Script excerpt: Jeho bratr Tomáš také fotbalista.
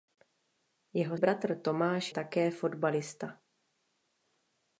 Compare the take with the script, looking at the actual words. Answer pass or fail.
pass